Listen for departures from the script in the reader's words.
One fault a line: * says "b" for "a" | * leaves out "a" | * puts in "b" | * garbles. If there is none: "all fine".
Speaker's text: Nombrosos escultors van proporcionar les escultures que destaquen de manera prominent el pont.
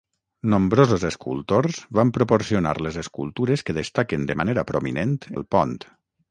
all fine